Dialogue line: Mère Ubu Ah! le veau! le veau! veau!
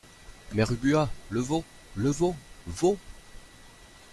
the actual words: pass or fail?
pass